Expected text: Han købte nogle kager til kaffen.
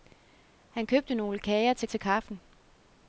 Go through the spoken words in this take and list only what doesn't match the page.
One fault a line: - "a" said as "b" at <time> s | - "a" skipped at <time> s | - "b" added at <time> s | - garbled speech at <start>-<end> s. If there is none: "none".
- "til" added at 1.8 s